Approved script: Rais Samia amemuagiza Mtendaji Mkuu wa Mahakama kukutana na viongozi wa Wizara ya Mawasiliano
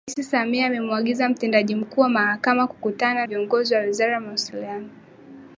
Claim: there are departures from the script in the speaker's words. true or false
true